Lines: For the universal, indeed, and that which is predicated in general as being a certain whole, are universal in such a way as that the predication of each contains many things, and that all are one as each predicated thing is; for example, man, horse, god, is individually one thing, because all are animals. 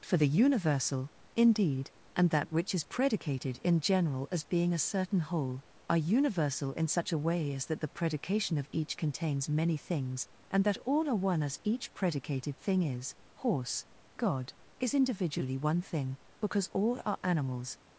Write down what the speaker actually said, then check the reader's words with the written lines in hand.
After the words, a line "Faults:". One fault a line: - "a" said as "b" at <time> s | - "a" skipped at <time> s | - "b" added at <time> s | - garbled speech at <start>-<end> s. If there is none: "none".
For the universal, indeed, and that which is predicated in general as being a certain whole, are universal in such a way as that the predication of each contains many things, and that all are one as each predicated thing is; horse, god, is individually one thing, because all are animals.
Faults:
- "for example man" skipped at 13.1 s